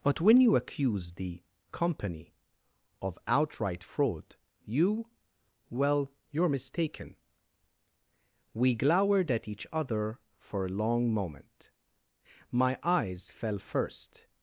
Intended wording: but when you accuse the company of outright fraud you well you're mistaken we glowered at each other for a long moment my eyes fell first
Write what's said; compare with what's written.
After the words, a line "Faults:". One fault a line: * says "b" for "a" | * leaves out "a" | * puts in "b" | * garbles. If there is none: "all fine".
but when you accuse the company of outright fraud you well you're mistaken we glowered at each other for a long moment my eyes fell first
Faults:
all fine